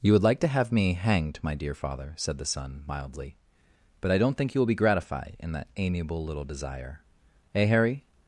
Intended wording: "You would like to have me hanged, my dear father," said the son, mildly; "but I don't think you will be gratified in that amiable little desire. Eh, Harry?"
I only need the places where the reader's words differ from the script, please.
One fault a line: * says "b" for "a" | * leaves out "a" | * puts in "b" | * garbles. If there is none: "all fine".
all fine